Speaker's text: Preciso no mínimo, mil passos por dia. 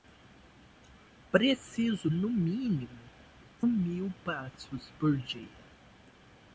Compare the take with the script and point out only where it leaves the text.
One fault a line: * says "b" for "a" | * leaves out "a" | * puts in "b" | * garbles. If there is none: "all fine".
all fine